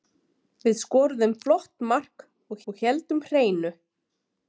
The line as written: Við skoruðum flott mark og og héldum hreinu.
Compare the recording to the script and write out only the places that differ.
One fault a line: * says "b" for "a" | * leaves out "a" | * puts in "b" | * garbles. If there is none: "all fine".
all fine